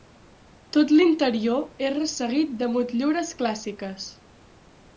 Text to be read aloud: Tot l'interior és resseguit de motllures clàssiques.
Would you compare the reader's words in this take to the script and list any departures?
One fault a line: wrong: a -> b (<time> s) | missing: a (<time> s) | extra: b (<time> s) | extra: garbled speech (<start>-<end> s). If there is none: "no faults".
no faults